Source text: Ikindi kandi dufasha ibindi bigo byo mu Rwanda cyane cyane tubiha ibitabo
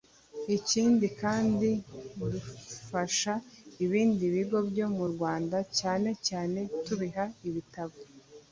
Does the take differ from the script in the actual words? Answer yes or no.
no